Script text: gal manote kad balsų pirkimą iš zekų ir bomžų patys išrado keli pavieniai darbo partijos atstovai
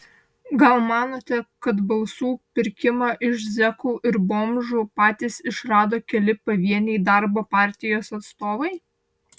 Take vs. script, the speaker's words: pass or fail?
pass